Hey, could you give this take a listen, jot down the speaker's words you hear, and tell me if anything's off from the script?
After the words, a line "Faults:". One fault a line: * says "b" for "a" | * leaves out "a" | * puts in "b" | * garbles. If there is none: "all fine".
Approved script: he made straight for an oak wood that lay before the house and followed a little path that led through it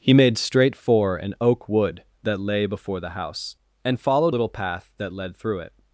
he made straight for an oak wood that lay before the house and followed little path that led through it
Faults:
* leaves out "a"